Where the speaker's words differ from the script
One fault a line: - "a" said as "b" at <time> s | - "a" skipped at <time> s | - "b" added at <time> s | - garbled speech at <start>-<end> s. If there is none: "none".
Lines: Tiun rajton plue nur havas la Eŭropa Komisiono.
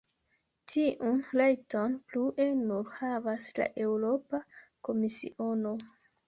none